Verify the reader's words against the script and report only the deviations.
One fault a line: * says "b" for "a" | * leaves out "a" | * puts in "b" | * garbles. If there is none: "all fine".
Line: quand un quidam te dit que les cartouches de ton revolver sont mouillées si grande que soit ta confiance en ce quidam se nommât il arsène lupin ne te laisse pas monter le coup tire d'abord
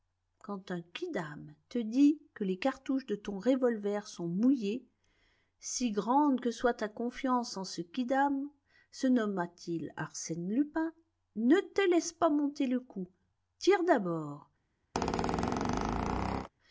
all fine